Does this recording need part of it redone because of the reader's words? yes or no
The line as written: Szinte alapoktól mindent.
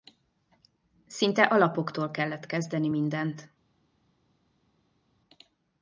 yes